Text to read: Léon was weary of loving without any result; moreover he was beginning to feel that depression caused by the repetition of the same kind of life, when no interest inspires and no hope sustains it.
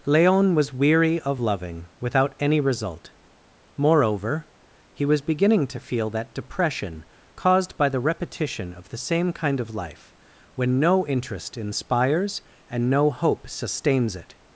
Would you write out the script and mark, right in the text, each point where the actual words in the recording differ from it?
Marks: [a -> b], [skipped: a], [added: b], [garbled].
Léon was weary of loving without any result; moreover he was beginning to feel that depression caused by the repetition of the same kind of life, when no interest inspires and no hope sustains it.